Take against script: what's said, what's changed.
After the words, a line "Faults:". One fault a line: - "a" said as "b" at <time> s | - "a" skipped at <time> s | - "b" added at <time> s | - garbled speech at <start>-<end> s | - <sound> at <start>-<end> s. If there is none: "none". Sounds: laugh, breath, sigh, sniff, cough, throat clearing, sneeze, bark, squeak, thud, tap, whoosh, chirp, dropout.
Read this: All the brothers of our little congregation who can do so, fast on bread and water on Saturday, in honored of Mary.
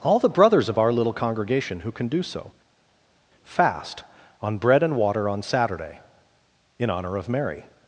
All the brothers of our little congregation who can do so, fast on bread and water on Saturday, in honor of Mary.
Faults:
- "honored" said as "honor" at 6.9 s